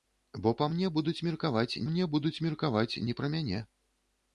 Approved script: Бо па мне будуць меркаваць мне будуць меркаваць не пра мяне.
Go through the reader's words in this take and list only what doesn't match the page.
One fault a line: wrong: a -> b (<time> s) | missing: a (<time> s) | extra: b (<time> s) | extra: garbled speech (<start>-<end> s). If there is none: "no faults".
no faults